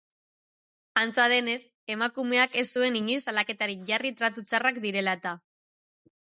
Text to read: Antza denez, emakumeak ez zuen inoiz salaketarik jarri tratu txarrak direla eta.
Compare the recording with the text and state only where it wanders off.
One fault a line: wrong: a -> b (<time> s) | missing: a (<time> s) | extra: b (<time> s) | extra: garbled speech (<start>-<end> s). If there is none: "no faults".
no faults